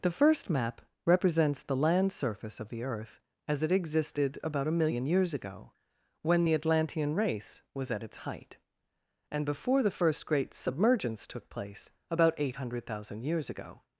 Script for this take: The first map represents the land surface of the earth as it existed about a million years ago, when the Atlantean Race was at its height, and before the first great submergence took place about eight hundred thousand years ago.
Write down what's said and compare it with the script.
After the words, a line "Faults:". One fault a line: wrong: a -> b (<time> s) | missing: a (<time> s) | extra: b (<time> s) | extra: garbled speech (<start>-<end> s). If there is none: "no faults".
The first map represents the land surface of the earth as it existed about a million years ago, when the Atlantean Race was at its height, and before the first great submergence took place about eight hundred thousand years ago.
Faults:
no faults